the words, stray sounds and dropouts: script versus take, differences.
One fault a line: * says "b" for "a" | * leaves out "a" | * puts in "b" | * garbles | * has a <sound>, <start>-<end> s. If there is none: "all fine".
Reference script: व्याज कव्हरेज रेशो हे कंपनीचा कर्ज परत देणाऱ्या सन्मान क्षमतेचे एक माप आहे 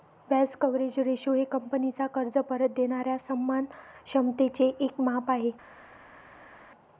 all fine